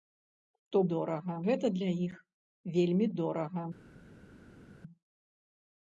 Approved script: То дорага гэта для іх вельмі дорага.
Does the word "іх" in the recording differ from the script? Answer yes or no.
no